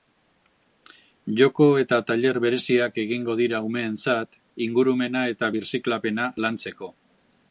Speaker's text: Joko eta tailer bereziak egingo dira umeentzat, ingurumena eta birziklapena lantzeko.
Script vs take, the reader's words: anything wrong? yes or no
no